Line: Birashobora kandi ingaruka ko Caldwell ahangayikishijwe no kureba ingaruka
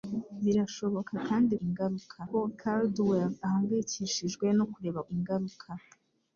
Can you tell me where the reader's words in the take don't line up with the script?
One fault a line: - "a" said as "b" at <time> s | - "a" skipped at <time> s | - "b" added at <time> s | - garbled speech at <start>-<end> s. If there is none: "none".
none